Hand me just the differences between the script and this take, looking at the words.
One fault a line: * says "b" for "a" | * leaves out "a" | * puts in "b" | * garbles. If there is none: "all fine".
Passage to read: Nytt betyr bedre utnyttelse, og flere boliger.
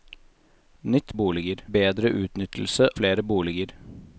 * says "boliger" for "betyr"
* leaves out "og"